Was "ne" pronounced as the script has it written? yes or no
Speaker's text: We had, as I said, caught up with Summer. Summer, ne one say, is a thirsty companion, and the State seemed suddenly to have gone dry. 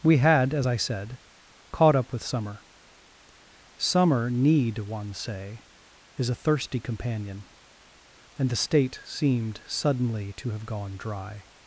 no